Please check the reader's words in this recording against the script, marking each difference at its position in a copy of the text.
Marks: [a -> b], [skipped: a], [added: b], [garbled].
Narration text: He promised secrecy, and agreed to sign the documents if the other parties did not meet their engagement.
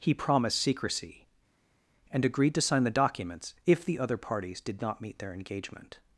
He promised secrecy, and agreed to sign the documents if the other parties did not meet their engagement.